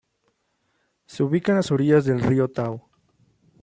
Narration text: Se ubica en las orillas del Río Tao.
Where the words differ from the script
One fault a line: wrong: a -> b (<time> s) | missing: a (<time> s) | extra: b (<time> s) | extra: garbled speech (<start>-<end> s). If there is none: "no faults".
no faults